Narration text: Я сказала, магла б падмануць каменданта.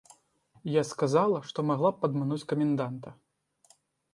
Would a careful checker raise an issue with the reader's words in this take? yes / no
yes